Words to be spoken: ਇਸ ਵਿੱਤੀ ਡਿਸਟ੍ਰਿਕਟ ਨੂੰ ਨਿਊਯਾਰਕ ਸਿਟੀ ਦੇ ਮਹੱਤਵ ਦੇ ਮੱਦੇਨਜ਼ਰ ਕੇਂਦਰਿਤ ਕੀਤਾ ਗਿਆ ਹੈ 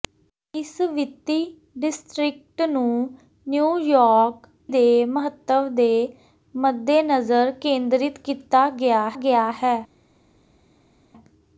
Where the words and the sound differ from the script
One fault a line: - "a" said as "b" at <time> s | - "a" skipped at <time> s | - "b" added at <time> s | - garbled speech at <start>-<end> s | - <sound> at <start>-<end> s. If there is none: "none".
- "ਸਿਟੀ" skipped at 4.5 s
- "ਗਿਆ" added at 9.1 s